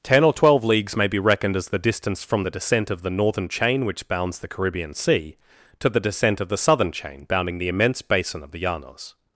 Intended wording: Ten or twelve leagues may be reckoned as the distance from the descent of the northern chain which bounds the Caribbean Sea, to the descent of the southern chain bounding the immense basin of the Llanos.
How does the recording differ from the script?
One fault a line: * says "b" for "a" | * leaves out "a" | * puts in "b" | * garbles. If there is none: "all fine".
all fine